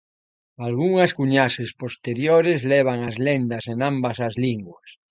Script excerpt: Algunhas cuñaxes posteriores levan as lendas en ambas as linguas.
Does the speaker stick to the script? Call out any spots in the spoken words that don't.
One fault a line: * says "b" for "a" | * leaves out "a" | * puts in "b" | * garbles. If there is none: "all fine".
all fine